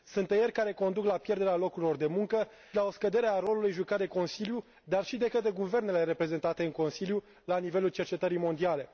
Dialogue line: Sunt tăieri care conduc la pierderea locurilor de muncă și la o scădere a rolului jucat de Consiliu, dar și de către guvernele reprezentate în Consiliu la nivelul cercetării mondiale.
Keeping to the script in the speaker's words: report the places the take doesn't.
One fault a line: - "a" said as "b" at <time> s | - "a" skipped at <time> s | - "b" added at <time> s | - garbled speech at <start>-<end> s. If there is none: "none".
- "și" skipped at 2.5 s